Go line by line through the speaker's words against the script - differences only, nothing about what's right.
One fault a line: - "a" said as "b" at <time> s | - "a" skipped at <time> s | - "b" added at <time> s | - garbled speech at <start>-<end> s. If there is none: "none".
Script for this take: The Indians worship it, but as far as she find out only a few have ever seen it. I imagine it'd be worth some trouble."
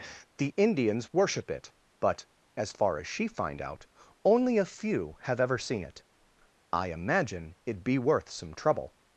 none